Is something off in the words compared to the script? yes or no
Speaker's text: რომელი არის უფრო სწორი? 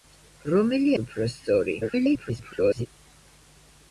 yes